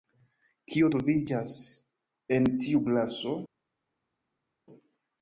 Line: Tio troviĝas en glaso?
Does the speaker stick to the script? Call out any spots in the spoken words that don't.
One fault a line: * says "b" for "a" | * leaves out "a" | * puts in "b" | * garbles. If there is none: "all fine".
* says "Kio" for "Tio"
* puts in "tiu"